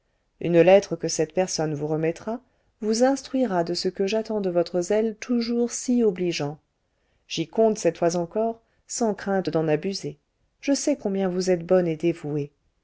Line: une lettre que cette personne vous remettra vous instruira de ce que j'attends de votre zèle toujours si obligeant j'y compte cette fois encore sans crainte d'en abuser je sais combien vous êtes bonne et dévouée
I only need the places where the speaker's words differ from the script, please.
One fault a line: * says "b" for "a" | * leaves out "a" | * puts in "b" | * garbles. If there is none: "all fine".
all fine